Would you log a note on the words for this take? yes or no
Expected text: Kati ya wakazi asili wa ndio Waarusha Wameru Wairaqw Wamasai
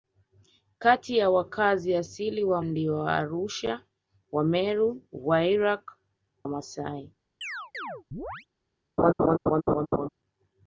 no